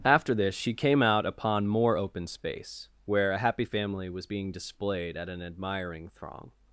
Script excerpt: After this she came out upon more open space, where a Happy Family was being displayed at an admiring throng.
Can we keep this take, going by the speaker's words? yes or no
yes